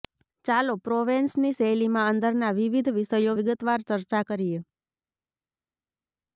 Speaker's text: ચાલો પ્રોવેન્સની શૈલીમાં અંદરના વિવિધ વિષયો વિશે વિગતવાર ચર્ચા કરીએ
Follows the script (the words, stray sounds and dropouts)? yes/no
no